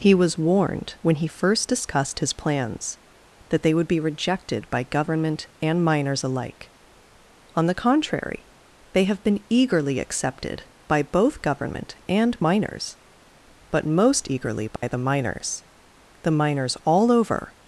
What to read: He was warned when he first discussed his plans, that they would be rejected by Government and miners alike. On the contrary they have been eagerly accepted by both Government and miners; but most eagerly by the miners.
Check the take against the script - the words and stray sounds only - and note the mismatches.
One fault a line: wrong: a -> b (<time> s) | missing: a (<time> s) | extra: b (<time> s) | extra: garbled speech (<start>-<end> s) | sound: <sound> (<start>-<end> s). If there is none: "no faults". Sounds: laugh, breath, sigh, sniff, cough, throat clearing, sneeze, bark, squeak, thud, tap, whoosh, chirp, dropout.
sound: dropout (14.8-14.8 s)
extra: The miners all over (16.2 s)